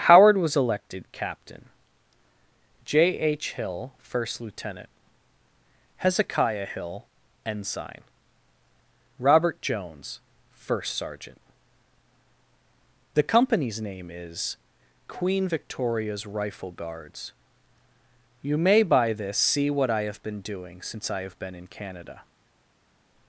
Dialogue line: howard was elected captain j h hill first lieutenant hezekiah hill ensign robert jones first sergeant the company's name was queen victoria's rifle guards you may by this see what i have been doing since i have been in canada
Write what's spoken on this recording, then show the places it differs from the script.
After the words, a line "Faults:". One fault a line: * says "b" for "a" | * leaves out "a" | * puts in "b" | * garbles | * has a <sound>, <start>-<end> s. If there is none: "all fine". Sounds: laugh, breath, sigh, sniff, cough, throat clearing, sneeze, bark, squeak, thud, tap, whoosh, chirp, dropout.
howard was elected captain j h hill first lieutenant hezekiah hill ensign robert jones first sergeant the company's name is queen victoria's rifle guards you may by this see what i have been doing since i have been in canada
Faults:
* says "is" for "was"